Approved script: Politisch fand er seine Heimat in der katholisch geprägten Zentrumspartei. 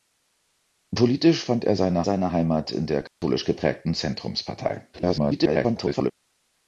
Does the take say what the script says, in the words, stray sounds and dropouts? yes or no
no